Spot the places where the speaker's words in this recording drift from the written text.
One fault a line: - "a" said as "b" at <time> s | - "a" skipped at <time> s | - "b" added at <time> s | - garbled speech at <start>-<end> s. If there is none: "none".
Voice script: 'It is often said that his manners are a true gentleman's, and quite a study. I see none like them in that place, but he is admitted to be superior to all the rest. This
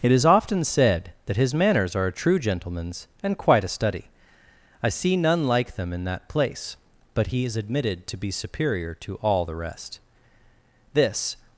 none